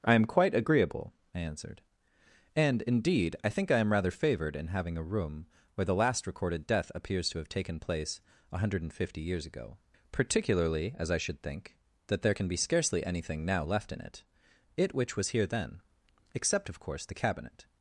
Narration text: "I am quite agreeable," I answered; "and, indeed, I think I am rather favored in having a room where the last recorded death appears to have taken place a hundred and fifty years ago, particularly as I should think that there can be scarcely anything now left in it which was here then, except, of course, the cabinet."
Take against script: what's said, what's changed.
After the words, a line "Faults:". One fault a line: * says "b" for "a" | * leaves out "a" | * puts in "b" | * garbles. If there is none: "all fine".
"I am quite agreeable," I answered; "and, indeed, I think I am rather favored in having a room where the last recorded death appears to have taken place a hundred and fifty years ago, particularly as I should think that there can be scarcely anything now left in it it which was here then, except, of course, the cabinet."
Faults:
* puts in "it"